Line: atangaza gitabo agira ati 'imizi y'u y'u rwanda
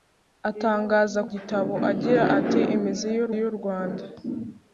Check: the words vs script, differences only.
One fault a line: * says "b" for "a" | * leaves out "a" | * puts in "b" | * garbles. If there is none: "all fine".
all fine